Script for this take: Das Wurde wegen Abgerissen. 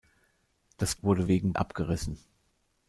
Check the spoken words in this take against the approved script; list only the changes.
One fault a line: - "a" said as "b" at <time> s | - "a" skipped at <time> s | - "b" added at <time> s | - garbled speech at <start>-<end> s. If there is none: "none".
none